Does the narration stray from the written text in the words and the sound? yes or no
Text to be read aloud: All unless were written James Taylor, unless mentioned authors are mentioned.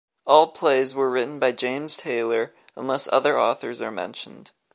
yes